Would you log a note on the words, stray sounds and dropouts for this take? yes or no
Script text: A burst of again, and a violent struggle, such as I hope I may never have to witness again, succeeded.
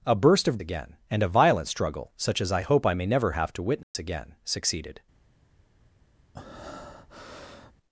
yes